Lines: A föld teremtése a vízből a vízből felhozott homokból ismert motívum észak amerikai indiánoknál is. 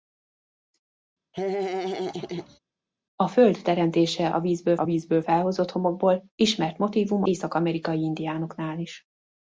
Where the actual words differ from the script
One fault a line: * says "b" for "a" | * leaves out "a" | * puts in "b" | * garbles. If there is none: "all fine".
all fine